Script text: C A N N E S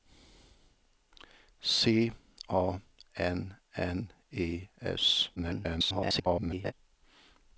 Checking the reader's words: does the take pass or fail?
fail